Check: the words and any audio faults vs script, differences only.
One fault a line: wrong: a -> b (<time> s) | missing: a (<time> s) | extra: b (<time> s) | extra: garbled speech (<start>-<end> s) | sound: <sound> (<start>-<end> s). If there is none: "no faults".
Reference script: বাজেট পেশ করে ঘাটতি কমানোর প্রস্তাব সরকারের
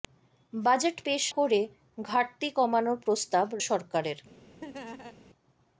sound: laugh (4.6-5.2 s)